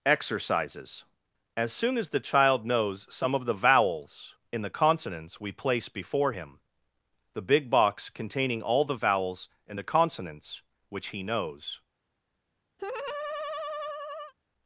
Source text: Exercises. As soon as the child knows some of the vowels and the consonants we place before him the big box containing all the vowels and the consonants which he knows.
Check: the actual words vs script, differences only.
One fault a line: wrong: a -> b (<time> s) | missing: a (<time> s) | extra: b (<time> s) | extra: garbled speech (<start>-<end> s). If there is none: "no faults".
wrong: and -> in (4.5 s)